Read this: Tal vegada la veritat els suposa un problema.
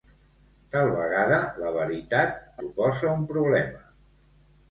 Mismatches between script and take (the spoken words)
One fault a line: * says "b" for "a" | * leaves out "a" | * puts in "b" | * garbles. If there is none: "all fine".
* leaves out "els"